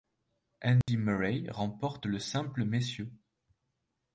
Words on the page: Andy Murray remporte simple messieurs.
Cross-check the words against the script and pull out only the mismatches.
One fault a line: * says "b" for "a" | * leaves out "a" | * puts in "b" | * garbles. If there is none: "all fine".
* puts in "le"